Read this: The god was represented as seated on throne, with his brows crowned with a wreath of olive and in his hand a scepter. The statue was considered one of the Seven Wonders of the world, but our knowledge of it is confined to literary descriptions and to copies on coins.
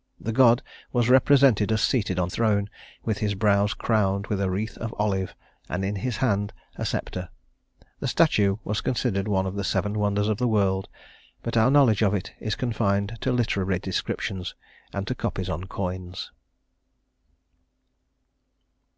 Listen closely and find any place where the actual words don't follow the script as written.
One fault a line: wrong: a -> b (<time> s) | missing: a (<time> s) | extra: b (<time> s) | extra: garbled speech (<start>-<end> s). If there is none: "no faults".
no faults